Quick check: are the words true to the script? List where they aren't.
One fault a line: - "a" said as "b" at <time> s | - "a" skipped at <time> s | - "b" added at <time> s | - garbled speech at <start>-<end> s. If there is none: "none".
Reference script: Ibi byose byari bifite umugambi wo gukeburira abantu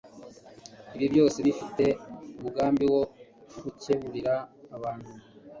- "byari" skipped at 1.4 s